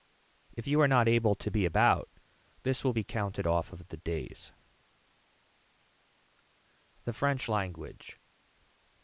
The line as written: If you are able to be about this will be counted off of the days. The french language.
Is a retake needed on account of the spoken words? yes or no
yes